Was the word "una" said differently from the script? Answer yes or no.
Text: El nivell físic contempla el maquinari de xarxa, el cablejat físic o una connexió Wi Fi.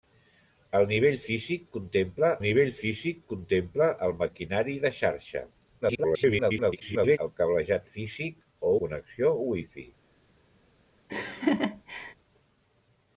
yes